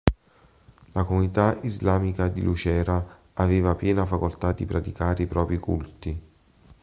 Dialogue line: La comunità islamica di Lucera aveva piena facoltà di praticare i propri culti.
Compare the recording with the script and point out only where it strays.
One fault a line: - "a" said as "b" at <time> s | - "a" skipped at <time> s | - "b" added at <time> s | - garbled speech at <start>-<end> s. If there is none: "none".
none